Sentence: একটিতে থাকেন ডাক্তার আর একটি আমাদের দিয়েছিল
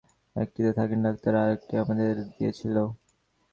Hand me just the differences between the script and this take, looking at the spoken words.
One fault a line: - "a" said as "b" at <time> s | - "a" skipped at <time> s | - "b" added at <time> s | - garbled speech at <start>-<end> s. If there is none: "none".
none